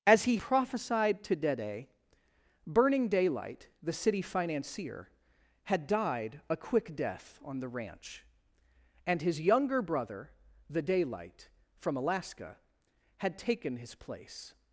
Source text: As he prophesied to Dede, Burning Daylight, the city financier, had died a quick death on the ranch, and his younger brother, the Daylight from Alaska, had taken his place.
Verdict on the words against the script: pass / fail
pass